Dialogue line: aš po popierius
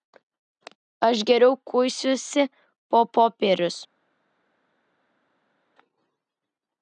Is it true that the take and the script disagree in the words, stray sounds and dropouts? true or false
true